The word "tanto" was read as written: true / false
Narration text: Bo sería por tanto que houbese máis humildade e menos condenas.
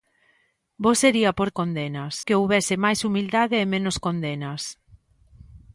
false